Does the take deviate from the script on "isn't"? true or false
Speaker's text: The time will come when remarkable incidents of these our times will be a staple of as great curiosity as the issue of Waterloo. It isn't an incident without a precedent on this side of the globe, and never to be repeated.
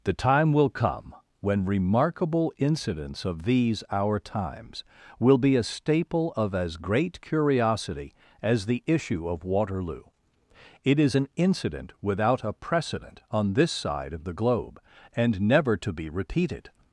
true